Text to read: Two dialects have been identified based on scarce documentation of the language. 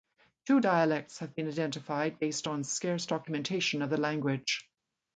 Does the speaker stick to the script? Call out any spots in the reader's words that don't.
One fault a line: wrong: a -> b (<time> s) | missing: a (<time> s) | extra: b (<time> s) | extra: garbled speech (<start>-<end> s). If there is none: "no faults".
no faults